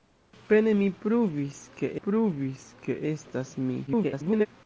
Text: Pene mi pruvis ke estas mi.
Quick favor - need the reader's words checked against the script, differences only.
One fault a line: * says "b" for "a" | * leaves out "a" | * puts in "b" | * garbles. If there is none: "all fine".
* puts in "pruvis ke"
* garbles